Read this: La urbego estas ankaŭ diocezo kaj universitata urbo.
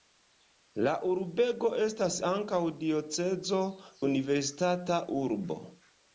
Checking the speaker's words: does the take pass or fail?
fail